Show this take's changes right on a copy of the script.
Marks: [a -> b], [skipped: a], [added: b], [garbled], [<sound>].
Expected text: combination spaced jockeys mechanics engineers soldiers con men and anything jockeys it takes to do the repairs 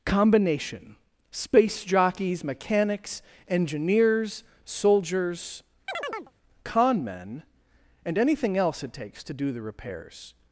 combination [spaced -> space] jockeys mechanics engineers soldiers [chirp] con men and anything [jockeys -> else] it takes to do the repairs